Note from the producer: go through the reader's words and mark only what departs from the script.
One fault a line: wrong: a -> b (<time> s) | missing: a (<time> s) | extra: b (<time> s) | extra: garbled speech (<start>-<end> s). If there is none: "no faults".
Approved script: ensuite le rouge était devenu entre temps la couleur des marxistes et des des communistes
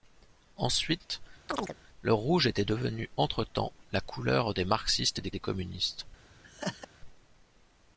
no faults